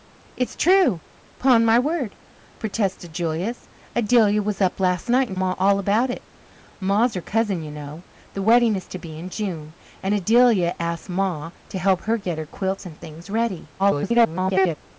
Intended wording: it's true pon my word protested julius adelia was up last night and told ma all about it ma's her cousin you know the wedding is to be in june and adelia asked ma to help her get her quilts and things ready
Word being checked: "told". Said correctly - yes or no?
no